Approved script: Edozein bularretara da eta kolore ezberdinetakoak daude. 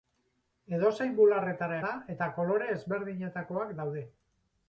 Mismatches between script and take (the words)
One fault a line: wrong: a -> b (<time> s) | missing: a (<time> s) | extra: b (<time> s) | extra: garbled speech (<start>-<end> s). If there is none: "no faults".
no faults